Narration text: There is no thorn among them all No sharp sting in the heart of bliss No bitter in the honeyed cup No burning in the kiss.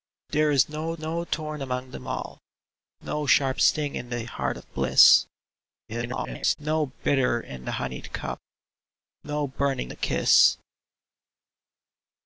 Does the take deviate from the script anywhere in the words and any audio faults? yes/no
yes